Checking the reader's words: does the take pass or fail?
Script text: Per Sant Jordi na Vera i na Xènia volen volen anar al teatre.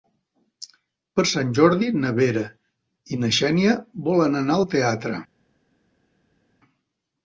fail